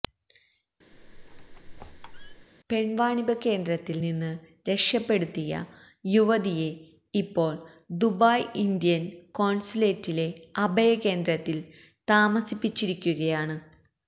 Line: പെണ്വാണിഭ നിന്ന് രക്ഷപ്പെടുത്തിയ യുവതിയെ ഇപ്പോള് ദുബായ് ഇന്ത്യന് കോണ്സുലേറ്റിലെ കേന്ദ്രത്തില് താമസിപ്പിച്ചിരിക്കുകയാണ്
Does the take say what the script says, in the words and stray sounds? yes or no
no